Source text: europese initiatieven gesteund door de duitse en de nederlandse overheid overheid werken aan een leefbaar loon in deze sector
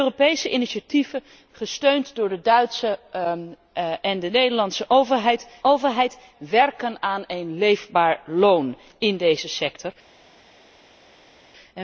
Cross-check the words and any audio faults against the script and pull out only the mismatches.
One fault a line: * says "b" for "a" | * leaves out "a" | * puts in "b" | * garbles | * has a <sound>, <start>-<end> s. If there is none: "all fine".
all fine